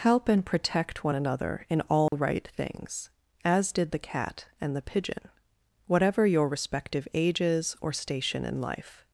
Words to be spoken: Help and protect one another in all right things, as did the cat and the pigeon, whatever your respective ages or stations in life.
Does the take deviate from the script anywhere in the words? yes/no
yes